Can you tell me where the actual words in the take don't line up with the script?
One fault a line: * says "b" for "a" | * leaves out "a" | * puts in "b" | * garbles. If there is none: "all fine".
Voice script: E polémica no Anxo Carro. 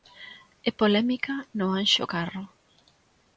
all fine